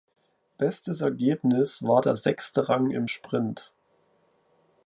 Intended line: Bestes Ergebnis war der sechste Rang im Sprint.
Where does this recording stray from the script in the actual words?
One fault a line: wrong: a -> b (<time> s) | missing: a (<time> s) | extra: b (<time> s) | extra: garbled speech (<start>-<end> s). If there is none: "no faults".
no faults